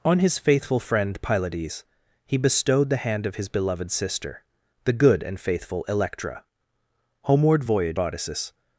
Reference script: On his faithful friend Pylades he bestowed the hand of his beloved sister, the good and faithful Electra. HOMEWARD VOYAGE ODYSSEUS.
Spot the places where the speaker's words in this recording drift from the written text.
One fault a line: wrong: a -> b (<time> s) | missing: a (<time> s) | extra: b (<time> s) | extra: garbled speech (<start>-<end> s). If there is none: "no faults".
no faults